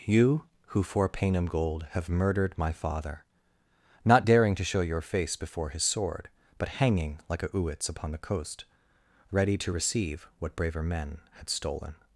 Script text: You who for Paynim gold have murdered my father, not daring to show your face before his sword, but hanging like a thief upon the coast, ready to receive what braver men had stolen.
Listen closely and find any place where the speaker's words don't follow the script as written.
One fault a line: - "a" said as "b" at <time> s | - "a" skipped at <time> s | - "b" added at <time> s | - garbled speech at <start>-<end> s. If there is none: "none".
- "thief" said as "uits" at 7.5 s